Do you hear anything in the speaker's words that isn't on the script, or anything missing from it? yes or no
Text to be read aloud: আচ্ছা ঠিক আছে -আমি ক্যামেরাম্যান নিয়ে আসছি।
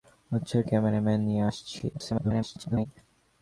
yes